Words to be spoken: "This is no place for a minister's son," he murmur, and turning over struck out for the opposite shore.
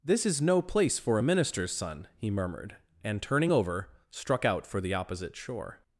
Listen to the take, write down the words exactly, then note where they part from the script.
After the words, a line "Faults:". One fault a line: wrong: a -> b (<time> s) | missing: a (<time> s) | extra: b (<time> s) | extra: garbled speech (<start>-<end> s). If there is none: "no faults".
"This is no place for a minister's son," he murmured, and turning over struck out for the opposite shore.
Faults:
wrong: murmur -> murmured (2.3 s)